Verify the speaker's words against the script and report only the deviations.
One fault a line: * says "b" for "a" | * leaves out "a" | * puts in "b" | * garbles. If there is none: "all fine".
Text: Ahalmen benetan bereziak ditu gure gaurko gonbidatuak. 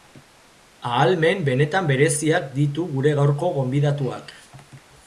all fine